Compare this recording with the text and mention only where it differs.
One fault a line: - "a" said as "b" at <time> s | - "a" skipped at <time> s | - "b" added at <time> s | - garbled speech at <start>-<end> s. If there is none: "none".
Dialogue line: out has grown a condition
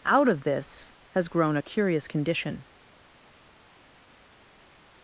- "of this" added at 0.3 s
- "curious" added at 1.6 s